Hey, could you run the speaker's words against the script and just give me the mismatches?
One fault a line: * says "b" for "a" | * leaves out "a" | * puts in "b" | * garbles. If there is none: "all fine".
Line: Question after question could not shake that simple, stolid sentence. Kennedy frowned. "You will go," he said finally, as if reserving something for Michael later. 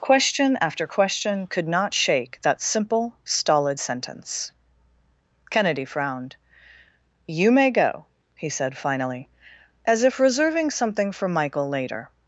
* says "may" for "will"